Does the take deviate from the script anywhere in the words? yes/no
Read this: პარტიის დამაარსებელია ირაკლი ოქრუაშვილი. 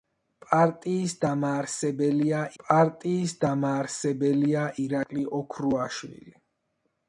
yes